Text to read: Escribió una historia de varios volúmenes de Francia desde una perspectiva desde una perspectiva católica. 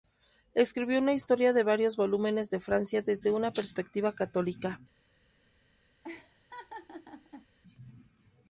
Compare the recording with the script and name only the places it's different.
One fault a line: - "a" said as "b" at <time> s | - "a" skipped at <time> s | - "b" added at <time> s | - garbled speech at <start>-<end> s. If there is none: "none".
- "desde una perspectiva" skipped at 4.1 s